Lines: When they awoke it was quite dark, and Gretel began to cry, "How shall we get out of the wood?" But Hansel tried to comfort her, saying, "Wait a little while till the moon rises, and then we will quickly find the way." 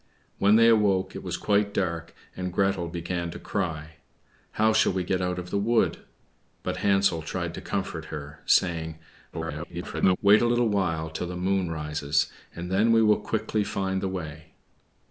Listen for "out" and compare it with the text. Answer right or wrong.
right